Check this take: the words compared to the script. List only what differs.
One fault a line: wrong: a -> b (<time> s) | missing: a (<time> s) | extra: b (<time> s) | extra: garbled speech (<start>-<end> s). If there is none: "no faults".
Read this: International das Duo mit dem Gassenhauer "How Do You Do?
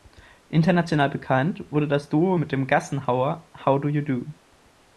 extra: bekannt wurde (1.1 s)